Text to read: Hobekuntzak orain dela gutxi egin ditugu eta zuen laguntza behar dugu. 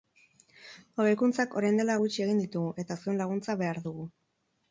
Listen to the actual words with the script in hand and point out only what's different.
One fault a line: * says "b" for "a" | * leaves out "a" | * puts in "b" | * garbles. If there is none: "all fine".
all fine